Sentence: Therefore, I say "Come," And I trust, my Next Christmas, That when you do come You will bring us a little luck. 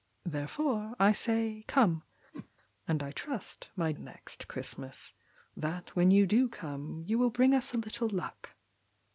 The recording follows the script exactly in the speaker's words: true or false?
true